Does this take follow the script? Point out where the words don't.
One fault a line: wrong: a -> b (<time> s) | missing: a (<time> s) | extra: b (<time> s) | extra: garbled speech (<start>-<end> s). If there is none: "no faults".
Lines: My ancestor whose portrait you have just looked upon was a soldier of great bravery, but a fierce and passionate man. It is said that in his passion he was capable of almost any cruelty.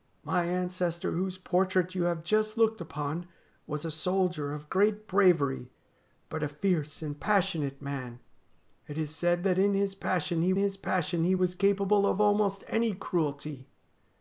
extra: his passion he (10.6 s)